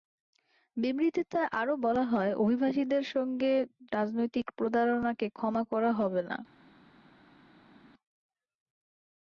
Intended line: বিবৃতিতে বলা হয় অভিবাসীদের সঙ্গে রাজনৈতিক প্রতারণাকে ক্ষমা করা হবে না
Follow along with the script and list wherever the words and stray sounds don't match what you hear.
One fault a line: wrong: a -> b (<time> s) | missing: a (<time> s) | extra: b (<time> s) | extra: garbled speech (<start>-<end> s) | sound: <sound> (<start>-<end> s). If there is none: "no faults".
extra: আরও (1.6 s)